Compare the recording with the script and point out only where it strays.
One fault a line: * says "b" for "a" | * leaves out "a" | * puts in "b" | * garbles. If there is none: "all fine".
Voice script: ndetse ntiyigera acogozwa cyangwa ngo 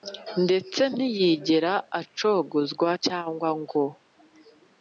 all fine